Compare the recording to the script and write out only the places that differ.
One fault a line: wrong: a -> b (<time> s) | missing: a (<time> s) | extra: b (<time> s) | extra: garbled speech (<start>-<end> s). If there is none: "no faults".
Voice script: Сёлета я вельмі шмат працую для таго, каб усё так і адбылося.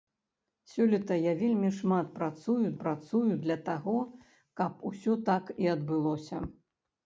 extra: працую (2.8 s)